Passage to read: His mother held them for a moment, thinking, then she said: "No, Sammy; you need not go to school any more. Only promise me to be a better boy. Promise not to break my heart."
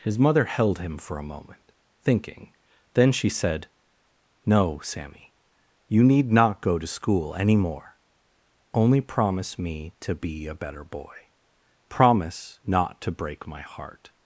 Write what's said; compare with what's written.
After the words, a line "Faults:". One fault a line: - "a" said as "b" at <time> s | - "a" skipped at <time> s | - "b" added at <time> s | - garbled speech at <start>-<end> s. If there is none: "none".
His mother held him for a moment, thinking, then she said: "No, Sammy; you need not go to school any more. Only promise me to be a better boy. Promise not to break my heart."
Faults:
- "them" said as "him" at 0.8 s